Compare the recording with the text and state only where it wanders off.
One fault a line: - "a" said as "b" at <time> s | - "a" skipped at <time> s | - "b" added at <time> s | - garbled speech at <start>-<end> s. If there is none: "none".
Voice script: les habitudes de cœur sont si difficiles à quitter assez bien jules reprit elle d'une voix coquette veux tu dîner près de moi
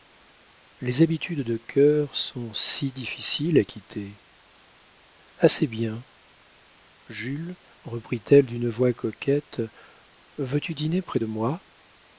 none